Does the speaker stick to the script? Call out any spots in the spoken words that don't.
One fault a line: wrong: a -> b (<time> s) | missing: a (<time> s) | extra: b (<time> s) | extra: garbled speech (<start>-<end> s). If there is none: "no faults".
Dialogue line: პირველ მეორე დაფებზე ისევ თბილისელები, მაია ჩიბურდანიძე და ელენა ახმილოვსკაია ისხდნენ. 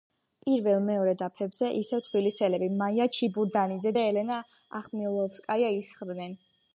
no faults